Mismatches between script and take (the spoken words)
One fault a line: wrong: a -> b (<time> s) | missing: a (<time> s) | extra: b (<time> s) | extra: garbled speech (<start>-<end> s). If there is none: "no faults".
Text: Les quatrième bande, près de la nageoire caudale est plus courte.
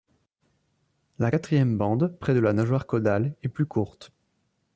wrong: Les -> La (1.2 s)